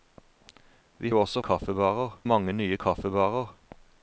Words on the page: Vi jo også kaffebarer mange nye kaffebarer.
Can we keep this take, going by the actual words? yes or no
yes